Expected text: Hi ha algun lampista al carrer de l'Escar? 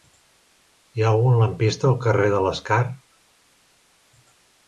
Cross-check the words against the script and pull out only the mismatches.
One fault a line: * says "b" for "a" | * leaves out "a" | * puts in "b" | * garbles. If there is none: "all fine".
all fine